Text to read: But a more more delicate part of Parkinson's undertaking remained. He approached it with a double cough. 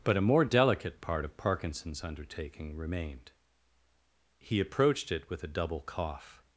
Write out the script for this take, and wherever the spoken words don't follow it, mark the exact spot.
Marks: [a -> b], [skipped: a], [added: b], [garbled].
But a more [skipped: more] delicate part of Parkinson's undertaking remained. He approached it with a double cough.